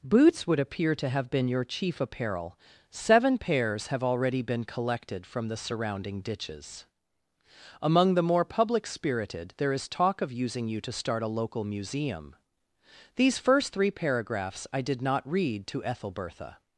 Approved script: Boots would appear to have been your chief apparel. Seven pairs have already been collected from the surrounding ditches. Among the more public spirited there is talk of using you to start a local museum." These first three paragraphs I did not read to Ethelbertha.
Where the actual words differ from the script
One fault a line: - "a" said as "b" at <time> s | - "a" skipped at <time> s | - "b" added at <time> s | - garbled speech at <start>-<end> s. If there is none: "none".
none